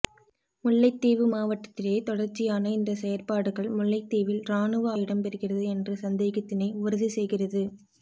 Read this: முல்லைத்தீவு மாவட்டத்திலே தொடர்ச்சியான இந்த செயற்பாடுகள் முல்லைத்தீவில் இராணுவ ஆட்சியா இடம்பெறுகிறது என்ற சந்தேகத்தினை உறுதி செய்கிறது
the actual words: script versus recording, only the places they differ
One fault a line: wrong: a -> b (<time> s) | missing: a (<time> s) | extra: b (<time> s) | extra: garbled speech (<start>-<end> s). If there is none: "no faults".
missing: ஆட்சியா (4.9 s)